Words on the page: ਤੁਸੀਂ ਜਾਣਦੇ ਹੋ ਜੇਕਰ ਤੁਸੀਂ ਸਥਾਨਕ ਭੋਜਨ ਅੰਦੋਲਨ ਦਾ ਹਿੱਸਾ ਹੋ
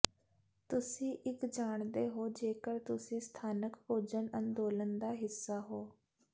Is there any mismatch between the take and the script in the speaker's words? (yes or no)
yes